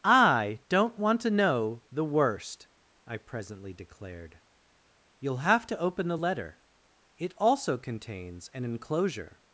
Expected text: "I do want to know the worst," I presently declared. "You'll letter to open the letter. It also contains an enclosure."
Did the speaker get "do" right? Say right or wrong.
wrong